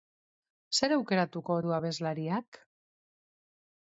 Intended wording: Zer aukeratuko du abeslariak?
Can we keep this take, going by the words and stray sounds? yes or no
yes